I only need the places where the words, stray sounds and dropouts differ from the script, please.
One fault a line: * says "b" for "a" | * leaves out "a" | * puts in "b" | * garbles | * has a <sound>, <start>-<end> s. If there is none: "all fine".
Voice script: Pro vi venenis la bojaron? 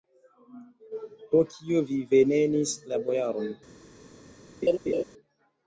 * puts in "kio"
* has a laugh, 4.6-5.0 s